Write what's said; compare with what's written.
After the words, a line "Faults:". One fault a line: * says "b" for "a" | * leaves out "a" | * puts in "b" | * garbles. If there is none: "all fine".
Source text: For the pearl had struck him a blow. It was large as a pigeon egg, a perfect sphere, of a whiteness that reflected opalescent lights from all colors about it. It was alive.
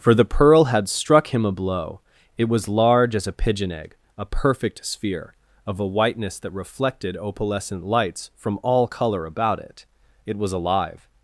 For the pearl had struck him a blow. It was large as a pigeon egg, a perfect sphere, of a whiteness that reflected opalescent lights from all color about it. It was alive.
Faults:
* says "color" for "colors"